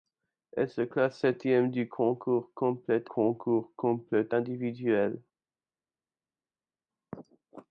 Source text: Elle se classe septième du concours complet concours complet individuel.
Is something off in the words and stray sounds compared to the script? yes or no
no